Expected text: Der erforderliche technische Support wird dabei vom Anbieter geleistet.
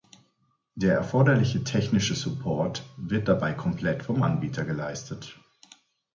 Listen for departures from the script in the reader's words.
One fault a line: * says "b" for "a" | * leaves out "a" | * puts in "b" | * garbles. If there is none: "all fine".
* puts in "komplett"